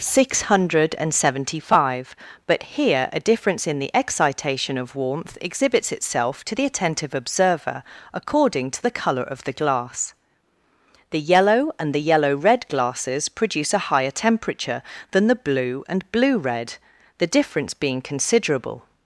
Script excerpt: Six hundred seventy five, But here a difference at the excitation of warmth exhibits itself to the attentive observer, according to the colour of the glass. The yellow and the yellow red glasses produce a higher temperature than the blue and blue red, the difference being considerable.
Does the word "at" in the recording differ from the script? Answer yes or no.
yes